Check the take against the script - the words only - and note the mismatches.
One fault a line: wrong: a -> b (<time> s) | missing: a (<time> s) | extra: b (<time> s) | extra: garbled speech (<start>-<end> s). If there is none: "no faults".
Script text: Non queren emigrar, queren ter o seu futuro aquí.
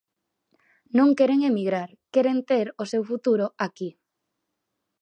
no faults